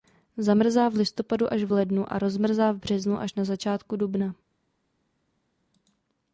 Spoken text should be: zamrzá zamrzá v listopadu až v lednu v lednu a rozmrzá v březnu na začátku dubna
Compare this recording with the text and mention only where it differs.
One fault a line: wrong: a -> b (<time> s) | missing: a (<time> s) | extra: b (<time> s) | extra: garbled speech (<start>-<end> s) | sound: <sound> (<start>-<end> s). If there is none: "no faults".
missing: zamrzá (0.9 s)
missing: v lednu (2.1 s)
extra: až (3.2 s)